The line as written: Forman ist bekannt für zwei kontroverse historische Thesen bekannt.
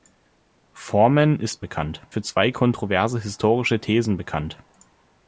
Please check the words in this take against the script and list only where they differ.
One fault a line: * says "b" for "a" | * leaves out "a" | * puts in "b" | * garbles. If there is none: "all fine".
all fine